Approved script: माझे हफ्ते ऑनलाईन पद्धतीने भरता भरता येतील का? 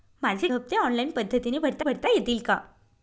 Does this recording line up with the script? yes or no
yes